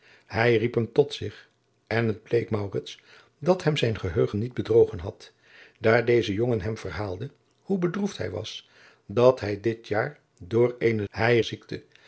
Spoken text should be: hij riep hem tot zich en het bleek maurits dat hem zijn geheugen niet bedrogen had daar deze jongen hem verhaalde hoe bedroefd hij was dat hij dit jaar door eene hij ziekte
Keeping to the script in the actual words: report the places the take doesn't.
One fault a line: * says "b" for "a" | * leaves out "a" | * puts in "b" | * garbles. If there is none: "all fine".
all fine